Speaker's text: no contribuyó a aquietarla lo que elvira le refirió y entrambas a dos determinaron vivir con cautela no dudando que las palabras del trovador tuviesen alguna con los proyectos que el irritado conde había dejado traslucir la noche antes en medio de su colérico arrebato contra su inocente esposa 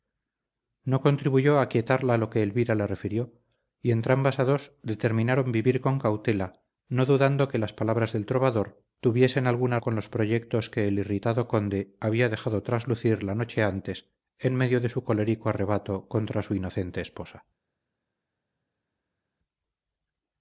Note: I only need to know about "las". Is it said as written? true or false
true